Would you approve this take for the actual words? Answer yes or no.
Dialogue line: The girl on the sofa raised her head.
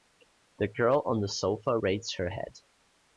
yes